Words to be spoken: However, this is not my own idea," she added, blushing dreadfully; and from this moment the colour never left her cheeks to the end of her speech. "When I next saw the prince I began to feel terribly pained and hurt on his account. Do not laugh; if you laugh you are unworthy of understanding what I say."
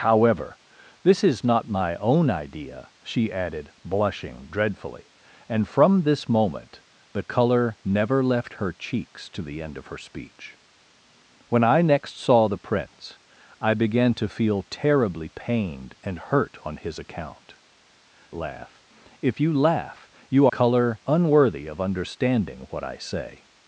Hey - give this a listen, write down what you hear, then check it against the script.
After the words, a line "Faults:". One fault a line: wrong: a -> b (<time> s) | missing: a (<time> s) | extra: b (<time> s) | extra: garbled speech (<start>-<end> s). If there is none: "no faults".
However, this is not my own idea," she added, blushing dreadfully; and from this moment the colour never left her cheeks to the end of her speech. "When I next saw the prince I began to feel terribly pained and hurt on his account. Laugh; if you laugh you colour unworthy of understanding what I say."
Faults:
missing: Do not (17.5 s)
wrong: are -> colour (20.4 s)